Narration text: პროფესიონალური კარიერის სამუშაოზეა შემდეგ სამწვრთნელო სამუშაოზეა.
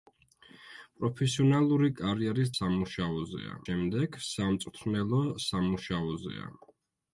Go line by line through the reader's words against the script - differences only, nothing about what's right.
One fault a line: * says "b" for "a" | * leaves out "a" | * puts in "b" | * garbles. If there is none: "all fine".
all fine